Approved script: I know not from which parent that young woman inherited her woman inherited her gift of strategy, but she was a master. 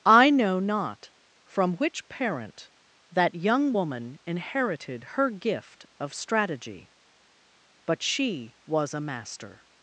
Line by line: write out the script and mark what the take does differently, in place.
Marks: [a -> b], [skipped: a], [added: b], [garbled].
I know not from which parent that young woman inherited her [skipped: woman inherited her] gift of strategy, but she was a master.